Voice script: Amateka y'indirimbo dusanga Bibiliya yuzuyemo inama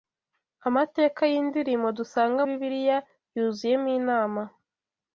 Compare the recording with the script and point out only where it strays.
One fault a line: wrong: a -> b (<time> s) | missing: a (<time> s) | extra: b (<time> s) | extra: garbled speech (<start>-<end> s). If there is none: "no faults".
no faults